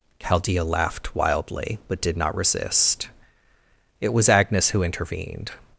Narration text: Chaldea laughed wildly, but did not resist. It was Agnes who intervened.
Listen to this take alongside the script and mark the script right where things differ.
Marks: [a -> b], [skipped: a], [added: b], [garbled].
Chaldea laughed wildly, but did not resist. It was Agnes who intervened.